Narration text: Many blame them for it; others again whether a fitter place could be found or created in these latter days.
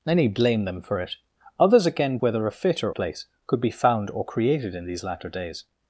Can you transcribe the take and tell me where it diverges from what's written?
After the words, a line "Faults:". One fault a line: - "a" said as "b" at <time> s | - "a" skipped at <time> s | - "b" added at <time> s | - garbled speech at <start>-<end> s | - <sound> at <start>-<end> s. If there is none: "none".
Many blame them for it; others again whether a fitter place could be found or created in these latter days.
Faults:
none